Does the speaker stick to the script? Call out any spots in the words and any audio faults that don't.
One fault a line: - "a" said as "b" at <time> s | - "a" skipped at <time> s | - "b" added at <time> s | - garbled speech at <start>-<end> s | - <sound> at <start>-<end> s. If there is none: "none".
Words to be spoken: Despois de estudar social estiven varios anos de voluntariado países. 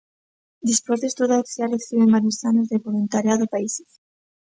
none